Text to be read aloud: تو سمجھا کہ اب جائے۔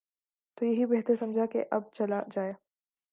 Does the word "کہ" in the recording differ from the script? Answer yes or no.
no